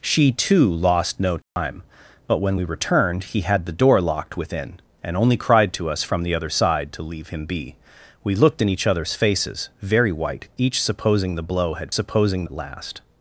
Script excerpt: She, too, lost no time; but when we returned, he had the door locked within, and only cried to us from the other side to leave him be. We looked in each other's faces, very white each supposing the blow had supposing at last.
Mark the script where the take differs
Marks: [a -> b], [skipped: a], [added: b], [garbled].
She, too, lost no time; but when we returned, he had the door locked within, and only cried to us from the other side to leave him be. We looked in each other's faces, very white each supposing the blow had supposing at last.